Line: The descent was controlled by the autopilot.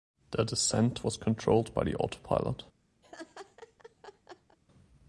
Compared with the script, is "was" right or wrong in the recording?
right